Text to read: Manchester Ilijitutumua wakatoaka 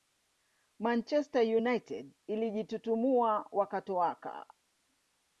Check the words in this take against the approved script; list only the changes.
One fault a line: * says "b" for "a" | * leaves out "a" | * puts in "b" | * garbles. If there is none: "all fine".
* puts in "United"